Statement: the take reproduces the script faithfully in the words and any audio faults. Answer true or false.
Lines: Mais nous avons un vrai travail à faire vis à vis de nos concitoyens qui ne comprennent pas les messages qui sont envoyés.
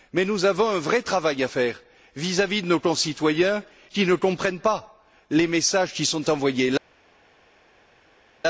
true